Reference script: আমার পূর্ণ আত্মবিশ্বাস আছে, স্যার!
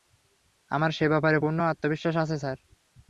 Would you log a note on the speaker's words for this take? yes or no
yes